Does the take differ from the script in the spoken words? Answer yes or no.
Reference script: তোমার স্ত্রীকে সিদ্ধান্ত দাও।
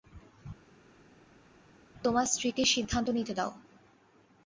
yes